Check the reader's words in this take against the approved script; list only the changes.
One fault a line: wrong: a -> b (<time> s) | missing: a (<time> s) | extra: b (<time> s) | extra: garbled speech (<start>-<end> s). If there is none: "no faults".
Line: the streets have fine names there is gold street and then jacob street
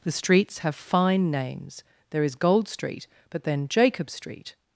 wrong: and -> but (3.3 s)